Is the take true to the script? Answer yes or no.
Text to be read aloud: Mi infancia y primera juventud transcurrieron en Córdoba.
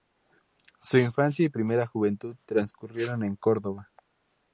no